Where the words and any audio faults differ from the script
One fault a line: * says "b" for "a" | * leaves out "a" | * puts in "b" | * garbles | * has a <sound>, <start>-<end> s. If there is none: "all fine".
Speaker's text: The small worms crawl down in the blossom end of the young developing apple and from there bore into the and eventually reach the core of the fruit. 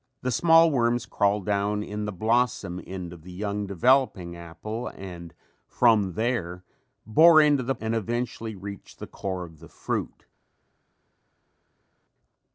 all fine